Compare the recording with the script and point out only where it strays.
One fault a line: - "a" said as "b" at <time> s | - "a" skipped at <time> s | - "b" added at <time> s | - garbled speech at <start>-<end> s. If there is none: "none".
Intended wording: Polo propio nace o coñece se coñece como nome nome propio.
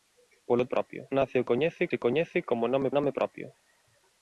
none